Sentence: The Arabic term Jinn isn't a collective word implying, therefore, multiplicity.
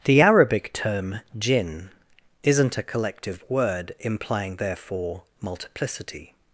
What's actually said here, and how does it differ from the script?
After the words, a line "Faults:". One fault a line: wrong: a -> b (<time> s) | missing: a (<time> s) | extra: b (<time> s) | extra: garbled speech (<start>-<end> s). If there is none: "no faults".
The Arabic term Jinn isn't a collective word implying, therefore, multiplicity.
Faults:
no faults